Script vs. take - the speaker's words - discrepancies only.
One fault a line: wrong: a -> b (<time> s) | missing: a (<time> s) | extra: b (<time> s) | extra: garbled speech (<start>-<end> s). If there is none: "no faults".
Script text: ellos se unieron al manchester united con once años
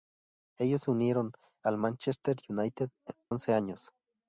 missing: con (2.9 s)